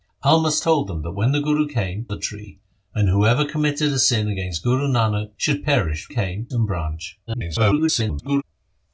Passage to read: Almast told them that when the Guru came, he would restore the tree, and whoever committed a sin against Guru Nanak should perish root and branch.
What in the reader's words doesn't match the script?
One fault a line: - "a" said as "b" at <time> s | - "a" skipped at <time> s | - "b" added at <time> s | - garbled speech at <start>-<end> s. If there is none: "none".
- "he would restore" skipped at 2.1 s
- "root" said as "came" at 6.1 s
- garbled speech at 7.3-8.4 s